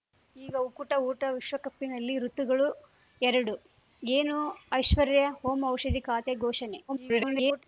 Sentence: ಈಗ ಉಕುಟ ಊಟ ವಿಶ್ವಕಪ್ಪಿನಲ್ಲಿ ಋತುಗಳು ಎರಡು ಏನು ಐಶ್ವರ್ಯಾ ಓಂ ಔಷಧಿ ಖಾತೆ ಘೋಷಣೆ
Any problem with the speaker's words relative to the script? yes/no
yes